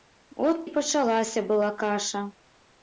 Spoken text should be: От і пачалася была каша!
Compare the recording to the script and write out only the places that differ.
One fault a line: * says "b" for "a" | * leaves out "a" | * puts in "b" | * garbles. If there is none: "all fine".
all fine